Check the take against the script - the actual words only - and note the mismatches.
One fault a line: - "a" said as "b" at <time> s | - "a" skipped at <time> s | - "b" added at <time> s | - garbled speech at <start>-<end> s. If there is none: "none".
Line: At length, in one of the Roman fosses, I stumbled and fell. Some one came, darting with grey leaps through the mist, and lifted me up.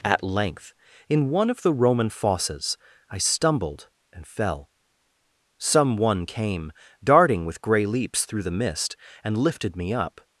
none